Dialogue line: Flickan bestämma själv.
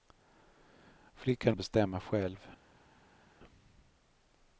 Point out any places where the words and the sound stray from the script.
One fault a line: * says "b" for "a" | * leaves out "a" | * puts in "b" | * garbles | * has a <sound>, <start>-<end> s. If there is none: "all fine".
all fine